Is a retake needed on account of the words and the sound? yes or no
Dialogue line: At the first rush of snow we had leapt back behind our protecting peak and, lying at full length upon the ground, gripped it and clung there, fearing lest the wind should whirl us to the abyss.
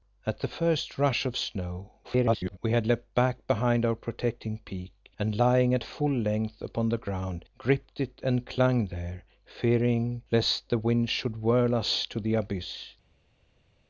yes